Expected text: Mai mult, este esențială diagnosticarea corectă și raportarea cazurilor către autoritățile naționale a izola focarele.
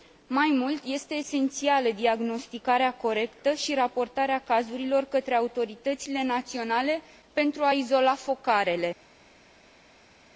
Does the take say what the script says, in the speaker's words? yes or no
no